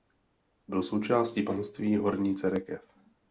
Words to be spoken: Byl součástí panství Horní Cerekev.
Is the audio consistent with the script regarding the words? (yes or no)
yes